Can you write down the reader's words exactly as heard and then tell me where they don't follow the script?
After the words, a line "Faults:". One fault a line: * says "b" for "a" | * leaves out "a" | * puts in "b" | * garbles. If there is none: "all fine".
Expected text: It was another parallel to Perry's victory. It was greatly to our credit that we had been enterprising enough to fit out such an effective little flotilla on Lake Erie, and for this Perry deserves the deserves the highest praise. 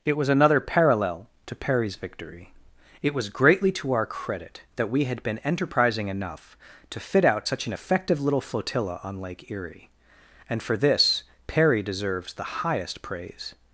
It was another parallel to Perry's victory. It was greatly to our credit that we had been enterprising enough to fit out such an effective little flotilla on Lake Erie, and for this Perry deserves the highest praise.
Faults:
* leaves out "deserves the"